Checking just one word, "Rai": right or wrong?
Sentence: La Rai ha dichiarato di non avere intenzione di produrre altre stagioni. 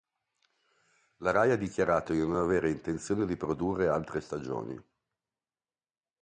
right